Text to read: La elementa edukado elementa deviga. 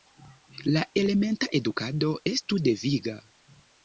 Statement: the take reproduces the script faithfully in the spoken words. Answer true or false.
false